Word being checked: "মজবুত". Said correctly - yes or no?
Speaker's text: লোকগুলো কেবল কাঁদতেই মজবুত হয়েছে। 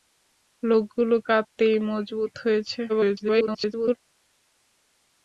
yes